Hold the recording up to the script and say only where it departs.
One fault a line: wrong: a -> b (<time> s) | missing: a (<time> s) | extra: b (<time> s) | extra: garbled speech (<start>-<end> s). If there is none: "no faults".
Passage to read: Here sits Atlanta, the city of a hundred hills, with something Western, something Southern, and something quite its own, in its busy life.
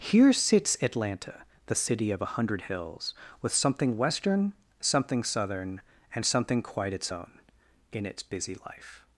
no faults